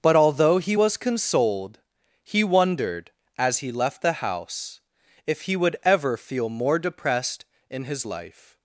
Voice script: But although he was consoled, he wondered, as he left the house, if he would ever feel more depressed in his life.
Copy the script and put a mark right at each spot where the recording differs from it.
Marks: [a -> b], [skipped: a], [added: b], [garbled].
But although he was consoled, he wondered, as he left the house, if he would ever feel more depressed in his life.